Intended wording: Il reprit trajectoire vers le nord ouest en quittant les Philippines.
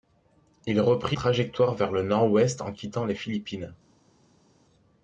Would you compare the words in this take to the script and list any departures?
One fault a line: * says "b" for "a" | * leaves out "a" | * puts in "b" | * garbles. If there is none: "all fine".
all fine